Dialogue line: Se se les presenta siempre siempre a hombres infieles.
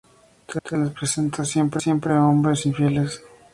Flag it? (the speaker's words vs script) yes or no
no